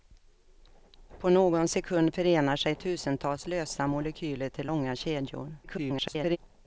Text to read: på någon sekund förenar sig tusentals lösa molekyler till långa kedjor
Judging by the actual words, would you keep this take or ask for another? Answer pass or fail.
fail